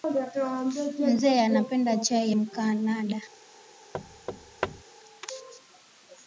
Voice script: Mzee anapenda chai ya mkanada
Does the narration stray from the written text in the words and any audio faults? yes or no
yes